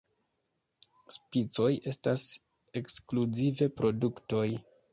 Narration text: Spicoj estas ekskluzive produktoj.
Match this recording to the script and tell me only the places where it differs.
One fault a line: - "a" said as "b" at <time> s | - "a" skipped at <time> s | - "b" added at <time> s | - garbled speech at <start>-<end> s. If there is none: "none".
none